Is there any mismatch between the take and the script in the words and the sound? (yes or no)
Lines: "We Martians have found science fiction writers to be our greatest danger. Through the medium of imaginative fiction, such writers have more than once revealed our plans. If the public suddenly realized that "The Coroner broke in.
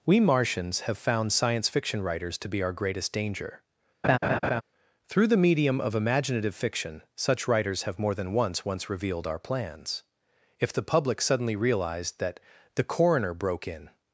yes